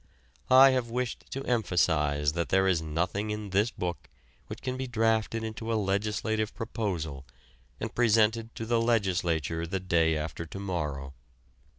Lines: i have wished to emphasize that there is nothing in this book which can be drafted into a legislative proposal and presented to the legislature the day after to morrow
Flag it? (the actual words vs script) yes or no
no